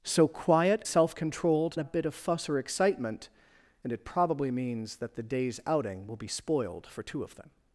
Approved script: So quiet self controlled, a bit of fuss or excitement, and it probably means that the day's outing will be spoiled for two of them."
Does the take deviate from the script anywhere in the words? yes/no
no